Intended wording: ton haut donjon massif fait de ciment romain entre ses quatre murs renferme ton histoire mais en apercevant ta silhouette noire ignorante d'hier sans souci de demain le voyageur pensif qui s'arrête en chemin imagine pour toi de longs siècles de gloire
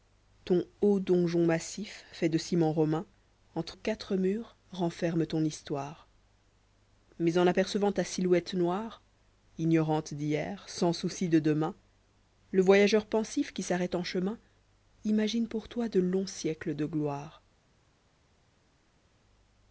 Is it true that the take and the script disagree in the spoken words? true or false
true